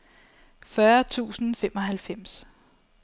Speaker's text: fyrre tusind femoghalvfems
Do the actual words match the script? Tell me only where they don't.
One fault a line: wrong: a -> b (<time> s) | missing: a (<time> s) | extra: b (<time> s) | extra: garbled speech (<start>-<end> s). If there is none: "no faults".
no faults